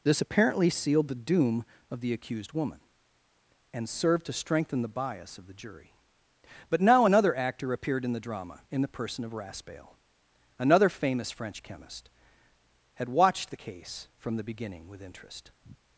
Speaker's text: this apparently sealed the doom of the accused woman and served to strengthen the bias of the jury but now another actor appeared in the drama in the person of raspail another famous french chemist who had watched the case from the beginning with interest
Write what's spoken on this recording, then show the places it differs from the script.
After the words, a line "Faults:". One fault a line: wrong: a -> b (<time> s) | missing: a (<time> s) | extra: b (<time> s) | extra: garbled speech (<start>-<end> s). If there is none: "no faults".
this apparently sealed the doom of the accused woman and served to strengthen the bias of the jury but now another actor appeared in the drama in the person of raspail another famous french chemist had watched the case from the beginning with interest
Faults:
missing: who (12.1 s)